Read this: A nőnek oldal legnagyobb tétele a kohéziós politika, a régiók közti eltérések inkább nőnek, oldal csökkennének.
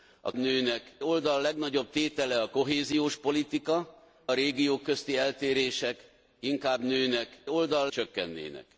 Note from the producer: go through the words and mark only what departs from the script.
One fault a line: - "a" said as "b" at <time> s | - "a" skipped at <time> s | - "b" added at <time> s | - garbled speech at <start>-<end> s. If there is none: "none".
none